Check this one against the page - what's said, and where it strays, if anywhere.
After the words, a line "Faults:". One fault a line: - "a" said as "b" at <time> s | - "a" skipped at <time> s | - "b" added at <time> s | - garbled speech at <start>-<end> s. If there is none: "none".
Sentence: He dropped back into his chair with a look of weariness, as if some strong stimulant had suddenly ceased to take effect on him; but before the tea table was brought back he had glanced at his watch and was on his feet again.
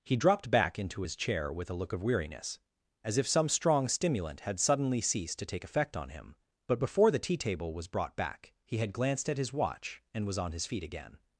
He dropped back into his chair with a look of weariness, as if some strong stimulant had suddenly ceased to take effect on him; but before the tea table was brought back he had glanced at his watch and was on his feet again.
Faults:
none